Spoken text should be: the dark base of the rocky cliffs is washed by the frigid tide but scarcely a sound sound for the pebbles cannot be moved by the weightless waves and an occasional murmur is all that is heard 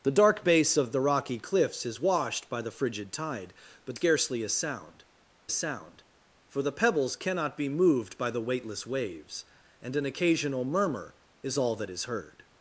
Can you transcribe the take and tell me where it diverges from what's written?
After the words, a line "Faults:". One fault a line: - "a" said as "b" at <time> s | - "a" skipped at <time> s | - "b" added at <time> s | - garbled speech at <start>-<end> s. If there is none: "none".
the dark base of the rocky cliffs is washed by the frigid tide but scarcely a sound sound for the pebbles cannot be moved by the weightless waves and an occasional murmur is all that is heard
Faults:
none